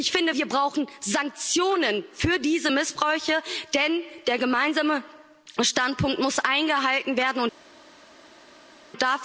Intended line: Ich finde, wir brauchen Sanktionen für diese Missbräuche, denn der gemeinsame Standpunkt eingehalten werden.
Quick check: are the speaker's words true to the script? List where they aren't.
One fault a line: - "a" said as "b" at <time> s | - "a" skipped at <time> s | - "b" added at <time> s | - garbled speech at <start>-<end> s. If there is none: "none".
- "muss" added at 6.2 s